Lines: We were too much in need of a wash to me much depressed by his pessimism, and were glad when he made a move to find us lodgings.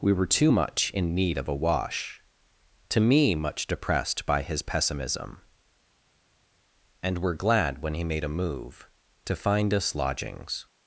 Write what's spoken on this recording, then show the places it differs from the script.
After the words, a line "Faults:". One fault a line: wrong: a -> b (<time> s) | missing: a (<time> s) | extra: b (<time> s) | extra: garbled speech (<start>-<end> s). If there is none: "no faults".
We were too much in need of a wash to me much depressed by his pessimism, and were glad when he made a move to find us lodgings.
Faults:
no faults